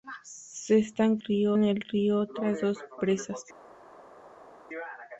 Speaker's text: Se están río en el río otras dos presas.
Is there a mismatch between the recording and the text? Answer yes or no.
no